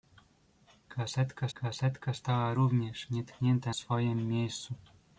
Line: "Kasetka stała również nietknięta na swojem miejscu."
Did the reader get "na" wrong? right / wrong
wrong